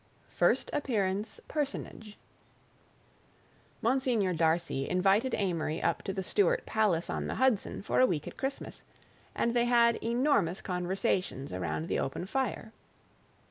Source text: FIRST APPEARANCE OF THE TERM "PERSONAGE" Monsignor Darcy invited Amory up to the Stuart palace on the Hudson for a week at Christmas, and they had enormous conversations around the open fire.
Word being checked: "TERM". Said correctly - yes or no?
no